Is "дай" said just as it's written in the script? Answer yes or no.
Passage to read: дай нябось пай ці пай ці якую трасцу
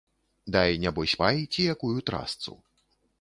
yes